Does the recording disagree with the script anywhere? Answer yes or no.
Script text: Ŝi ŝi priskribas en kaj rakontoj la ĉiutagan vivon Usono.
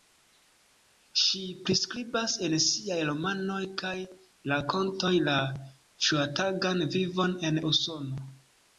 yes